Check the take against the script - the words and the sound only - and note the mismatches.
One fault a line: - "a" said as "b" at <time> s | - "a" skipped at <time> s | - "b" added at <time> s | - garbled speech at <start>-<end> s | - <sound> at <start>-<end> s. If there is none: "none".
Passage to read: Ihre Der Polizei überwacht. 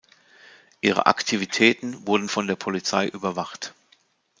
- "Aktivitäten wurden von" added at 1.1 s